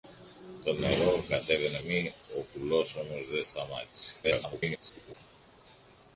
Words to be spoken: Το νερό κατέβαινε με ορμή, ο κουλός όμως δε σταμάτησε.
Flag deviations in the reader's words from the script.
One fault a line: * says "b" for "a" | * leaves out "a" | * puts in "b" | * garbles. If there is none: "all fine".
* leaves out "με"
* garbles